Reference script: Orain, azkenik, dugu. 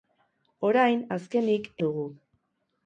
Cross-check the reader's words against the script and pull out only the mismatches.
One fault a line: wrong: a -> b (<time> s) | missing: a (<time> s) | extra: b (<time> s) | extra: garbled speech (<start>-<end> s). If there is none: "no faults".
no faults